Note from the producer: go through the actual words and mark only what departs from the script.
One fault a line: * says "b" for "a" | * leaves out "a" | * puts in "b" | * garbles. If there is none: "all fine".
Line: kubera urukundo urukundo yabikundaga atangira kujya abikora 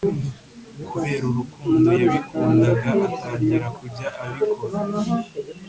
* leaves out "urukundo"